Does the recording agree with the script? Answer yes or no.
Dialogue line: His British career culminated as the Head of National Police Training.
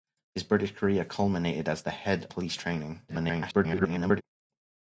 no